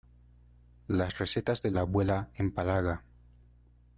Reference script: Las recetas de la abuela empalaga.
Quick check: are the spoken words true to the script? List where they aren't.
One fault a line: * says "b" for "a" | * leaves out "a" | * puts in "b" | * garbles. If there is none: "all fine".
all fine